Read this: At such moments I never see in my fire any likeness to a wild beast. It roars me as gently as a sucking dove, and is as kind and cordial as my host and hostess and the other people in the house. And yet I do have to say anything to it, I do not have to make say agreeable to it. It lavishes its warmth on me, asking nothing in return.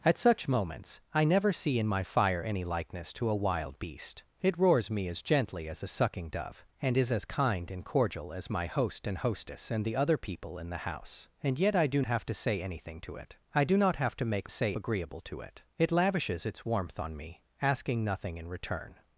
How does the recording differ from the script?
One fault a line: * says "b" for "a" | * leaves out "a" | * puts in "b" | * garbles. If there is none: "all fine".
all fine